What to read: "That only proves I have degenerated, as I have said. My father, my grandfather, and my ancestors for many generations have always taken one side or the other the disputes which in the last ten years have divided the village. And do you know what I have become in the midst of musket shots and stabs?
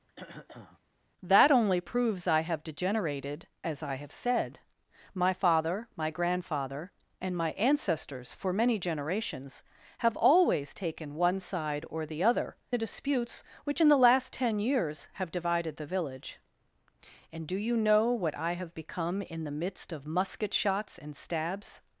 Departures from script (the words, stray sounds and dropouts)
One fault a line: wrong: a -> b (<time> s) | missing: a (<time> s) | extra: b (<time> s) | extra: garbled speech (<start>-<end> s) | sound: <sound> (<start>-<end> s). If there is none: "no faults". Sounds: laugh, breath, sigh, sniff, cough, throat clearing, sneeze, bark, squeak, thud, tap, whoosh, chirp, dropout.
sound: throat clearing (0.1-0.8 s)